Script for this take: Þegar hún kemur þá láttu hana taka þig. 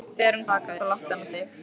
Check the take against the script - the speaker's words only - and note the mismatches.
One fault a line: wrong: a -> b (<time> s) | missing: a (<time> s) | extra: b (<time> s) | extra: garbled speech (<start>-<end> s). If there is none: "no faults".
wrong: kemur -> taka (0.5 s)
missing: taka (1.3 s)